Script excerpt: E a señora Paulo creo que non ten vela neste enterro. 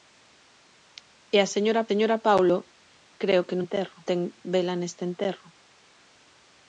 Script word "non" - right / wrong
wrong